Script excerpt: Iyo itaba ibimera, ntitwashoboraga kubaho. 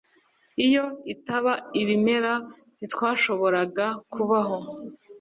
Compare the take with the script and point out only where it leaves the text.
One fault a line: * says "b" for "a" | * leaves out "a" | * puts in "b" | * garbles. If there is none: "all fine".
all fine